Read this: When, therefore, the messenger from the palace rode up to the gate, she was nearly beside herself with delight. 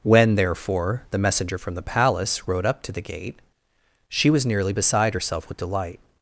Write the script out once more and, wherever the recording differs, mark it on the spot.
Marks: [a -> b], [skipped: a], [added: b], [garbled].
When, therefore, the messenger from the palace rode up to the gate, she was nearly beside herself with delight.